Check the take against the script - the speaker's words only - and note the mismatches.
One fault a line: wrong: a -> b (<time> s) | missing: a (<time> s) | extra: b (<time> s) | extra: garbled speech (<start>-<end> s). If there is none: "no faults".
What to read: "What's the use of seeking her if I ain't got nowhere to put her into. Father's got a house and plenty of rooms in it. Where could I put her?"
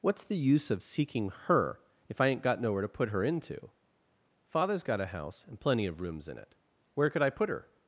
no faults